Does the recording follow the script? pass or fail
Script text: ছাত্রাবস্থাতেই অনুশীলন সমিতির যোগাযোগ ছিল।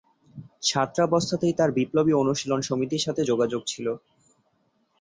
fail